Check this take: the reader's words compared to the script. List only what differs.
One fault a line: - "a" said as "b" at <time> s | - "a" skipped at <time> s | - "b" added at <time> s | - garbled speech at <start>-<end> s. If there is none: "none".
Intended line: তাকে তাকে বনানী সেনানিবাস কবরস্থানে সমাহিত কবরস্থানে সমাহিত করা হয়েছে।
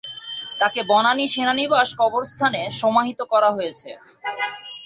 - "তাকে" skipped at 0.8 s
- "কবরস্থানে সমাহিত" skipped at 3.2 s